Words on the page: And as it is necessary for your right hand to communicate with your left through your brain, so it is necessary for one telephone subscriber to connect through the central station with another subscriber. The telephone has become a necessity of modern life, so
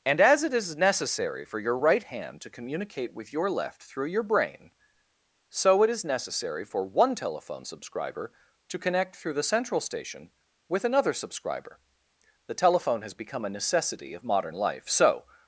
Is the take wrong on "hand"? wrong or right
right